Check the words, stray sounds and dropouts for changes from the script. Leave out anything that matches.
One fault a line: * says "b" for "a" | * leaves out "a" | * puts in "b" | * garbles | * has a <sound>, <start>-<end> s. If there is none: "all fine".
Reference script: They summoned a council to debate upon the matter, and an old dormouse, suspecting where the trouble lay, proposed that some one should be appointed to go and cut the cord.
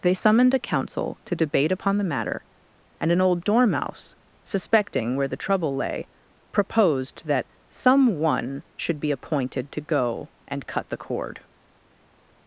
all fine